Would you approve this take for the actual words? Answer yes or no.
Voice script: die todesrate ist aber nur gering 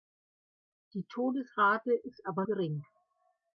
no